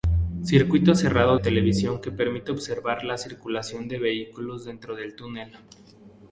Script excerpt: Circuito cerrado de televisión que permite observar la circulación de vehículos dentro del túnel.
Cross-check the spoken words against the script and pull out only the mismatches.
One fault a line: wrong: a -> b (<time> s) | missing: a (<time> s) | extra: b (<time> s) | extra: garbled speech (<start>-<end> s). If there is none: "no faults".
missing: de (1.4 s)